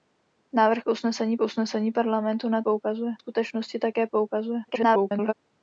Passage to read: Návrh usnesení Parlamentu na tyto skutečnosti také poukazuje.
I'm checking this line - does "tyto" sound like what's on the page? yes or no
no